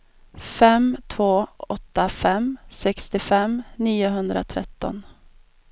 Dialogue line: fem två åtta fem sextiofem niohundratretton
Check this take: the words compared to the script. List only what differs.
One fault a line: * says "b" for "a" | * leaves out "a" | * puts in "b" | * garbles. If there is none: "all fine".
all fine